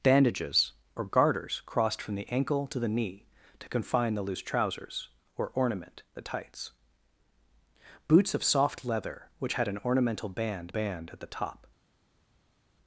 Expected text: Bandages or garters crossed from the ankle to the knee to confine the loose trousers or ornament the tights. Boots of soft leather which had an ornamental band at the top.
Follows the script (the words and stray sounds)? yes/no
no